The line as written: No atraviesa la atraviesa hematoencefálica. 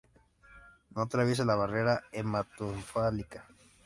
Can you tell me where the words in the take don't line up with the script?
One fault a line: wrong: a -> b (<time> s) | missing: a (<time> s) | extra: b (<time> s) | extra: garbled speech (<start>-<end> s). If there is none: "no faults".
wrong: atraviesa -> barrera (1.5 s)